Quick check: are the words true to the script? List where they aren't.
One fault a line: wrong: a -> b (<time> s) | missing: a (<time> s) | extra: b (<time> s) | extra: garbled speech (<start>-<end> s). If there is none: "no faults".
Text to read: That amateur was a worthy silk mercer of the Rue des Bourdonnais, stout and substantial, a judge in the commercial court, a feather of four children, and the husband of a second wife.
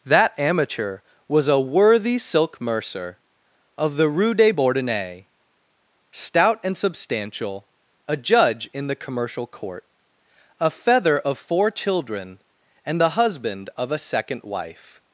no faults